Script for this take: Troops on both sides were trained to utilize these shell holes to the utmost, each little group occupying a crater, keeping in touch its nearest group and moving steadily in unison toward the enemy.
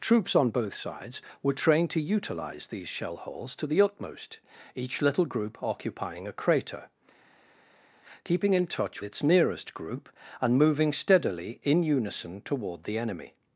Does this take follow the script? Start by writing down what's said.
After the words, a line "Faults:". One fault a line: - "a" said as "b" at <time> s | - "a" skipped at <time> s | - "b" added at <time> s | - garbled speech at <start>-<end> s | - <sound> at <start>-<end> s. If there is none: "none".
Troops on both sides were trained to utilize these shell holes to the utmost, each little group occupying a crater, keeping in touch its nearest group and moving steadily in unison toward the enemy.
Faults:
none